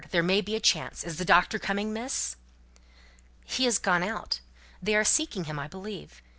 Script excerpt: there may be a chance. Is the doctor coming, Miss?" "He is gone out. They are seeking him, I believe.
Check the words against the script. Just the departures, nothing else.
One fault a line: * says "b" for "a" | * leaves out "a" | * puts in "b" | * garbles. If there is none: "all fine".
all fine